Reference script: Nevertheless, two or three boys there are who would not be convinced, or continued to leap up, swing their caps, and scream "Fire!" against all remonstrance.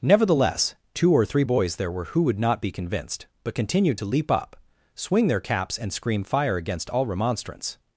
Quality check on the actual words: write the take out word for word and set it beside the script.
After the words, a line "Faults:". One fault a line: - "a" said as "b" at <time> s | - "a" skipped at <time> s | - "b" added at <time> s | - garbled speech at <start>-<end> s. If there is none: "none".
Nevertheless, two or three boys there were who would not be convinced, but continued to leap up, swing their caps, and scream "Fire!" against all remonstrance.
Faults:
- "are" said as "were" at 1.9 s
- "or" said as "but" at 3.4 s